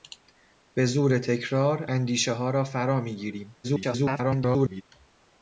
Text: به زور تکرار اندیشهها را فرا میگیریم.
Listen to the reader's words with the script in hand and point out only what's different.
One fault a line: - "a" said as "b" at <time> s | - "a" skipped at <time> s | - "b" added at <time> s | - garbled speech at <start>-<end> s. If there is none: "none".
- garbled speech at 3.6-4.8 s